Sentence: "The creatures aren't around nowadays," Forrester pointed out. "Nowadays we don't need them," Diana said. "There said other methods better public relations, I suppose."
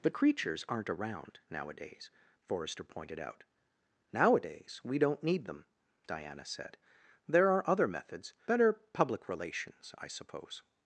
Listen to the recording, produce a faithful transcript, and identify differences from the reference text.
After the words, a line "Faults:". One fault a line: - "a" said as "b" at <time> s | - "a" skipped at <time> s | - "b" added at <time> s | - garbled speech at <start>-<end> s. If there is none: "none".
"The creatures aren't around nowadays," Forrester pointed out. "Nowadays we don't need them," Diana said. "There are other methods better public relations, I suppose."
Faults:
- "said" said as "are" at 7.5 s